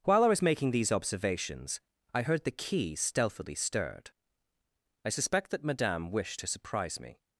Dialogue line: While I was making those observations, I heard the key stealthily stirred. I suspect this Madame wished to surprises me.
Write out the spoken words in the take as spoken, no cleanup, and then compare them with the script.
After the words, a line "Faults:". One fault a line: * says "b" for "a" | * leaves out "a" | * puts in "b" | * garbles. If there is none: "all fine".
While I was making these observations, I heard the key stealthily stirred. I suspect that Madame wished to surprise me.
Faults:
* says "these" for "those"
* says "that" for "this"
* says "surprise" for "surprises"